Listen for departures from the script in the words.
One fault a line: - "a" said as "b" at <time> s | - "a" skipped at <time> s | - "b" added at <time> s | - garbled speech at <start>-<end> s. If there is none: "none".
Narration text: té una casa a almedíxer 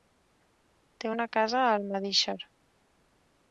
none